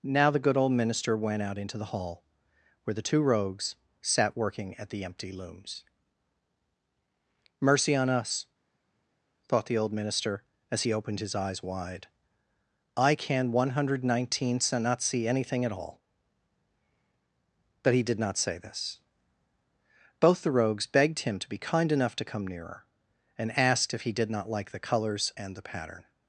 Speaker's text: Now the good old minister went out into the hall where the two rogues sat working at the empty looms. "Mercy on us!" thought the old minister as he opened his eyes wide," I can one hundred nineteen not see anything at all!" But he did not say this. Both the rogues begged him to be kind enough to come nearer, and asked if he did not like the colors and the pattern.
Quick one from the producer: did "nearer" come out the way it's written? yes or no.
yes